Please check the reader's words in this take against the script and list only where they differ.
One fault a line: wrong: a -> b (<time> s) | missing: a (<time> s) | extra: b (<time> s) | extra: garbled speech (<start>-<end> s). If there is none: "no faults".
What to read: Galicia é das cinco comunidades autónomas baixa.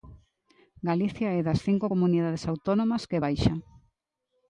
extra: que (3.1 s)